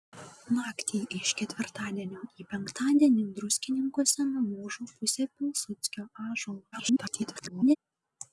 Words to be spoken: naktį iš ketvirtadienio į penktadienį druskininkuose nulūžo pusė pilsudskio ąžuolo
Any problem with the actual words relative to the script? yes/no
yes